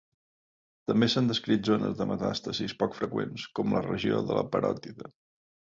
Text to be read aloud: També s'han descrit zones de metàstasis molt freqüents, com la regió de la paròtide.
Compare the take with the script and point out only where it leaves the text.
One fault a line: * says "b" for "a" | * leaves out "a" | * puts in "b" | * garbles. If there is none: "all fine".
* says "poc" for "molt"